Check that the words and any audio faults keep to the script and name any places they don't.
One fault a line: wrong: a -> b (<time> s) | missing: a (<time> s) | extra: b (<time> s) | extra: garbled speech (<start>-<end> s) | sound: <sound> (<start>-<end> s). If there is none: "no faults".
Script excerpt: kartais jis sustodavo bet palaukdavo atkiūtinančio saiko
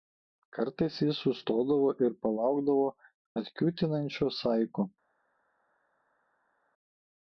wrong: bet -> ir (2.1 s)